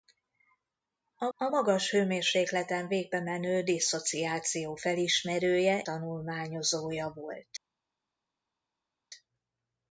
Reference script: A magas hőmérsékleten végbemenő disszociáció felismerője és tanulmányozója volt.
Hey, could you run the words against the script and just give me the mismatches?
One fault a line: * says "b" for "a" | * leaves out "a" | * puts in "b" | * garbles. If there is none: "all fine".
* puts in "a"
* leaves out "és"